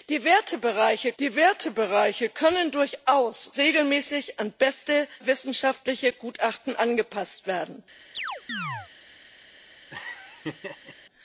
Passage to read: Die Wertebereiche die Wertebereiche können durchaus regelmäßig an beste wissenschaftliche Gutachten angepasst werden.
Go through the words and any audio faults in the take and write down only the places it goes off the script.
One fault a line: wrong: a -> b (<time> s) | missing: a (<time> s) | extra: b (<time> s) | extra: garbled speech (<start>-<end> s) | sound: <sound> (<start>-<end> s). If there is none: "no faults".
sound: chirp (8.1-8.9 s)
sound: laugh (9.9-10.9 s)